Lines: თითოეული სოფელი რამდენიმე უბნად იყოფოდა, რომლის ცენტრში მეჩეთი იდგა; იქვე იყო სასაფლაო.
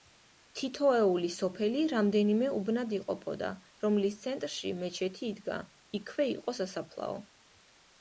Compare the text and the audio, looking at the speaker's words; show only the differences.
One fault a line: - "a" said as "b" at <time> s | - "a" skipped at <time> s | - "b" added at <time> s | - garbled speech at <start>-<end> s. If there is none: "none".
none